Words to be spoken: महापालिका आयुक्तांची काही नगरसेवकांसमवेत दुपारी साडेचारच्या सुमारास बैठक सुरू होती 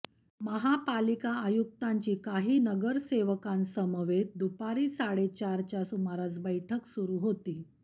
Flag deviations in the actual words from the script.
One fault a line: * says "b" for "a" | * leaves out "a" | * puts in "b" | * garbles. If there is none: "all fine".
all fine